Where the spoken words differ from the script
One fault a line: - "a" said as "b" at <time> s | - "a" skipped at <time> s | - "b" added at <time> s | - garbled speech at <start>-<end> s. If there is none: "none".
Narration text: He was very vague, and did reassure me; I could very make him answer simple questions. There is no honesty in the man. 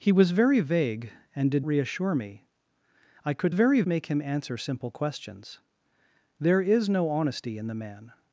none